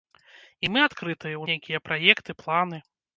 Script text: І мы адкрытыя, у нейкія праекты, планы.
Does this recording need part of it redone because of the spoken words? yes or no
no